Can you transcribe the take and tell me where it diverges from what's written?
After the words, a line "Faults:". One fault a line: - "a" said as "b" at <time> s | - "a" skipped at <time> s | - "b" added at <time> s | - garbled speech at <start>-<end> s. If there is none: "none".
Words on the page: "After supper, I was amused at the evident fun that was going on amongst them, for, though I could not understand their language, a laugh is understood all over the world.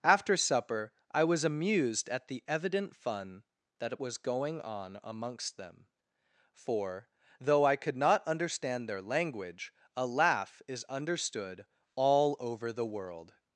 "After supper, I was amused at the evident fun that was going on amongst them, for, though I could not understand their language, a laugh is understood all over the world.
Faults:
none